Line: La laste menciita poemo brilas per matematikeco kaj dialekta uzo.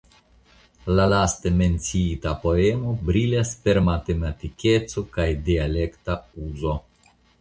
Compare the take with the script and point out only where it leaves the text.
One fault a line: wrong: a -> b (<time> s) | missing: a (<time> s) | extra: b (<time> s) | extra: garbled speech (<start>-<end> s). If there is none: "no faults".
no faults